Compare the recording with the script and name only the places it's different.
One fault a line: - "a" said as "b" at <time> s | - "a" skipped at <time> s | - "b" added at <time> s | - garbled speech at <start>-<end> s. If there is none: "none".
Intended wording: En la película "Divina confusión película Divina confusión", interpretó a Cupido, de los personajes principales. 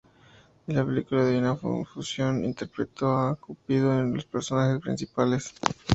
- "película Divina confusión" skipped at 2.4 s
- "uno" added at 3.9 s